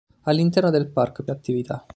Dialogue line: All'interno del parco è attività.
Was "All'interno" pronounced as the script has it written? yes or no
yes